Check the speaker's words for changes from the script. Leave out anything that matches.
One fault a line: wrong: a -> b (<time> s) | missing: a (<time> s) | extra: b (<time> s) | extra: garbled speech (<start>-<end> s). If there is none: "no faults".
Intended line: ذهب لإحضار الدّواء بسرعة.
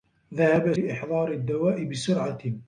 no faults